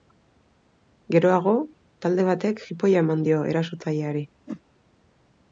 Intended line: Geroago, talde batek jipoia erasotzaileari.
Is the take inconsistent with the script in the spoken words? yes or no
yes